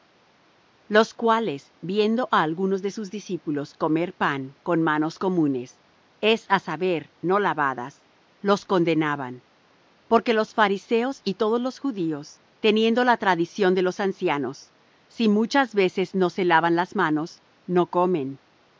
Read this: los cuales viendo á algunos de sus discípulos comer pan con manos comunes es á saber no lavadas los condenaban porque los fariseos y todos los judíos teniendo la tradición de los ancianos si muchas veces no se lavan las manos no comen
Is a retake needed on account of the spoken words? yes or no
no